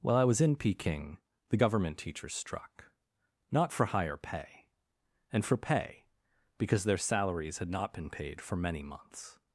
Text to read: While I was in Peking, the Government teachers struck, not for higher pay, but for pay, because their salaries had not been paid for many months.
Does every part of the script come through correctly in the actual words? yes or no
no